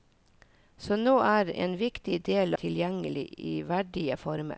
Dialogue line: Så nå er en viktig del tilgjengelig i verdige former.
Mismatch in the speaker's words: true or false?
false